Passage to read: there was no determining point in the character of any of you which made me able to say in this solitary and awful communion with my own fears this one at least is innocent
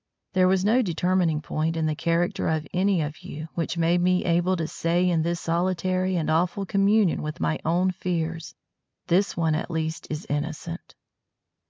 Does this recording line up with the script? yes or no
yes